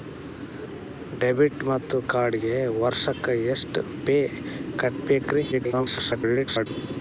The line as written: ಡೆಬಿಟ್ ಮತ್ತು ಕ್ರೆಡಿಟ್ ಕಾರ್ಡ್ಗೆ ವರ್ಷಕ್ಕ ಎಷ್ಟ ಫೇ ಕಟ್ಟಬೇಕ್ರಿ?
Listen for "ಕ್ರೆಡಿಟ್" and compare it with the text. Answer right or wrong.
wrong